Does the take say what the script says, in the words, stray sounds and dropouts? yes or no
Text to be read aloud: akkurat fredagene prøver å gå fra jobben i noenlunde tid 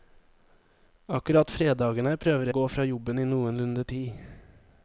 yes